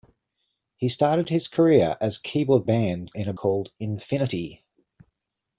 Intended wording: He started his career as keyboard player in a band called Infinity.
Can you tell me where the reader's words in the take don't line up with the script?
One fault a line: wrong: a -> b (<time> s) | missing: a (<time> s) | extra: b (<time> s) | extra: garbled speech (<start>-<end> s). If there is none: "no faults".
wrong: player -> band (2.6 s)
missing: band (3.3 s)